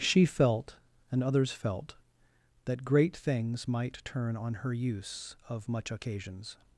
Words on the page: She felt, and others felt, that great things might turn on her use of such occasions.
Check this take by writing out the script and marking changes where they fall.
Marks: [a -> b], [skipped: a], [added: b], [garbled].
She felt, and others felt, that great things might turn on her use of [such -> much] occasions.